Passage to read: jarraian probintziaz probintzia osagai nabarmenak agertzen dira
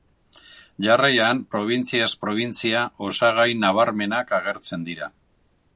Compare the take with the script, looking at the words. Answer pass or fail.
pass